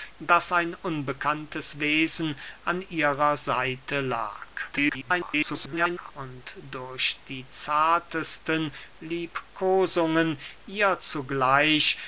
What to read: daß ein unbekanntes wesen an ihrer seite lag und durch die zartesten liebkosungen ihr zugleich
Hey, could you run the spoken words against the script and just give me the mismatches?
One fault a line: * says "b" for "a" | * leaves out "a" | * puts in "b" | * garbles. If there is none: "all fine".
* garbles